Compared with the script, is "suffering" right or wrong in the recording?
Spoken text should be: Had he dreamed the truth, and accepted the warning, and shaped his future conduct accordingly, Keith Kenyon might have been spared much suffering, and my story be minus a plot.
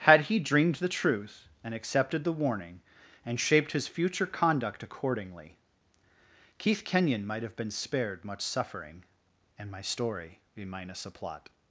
right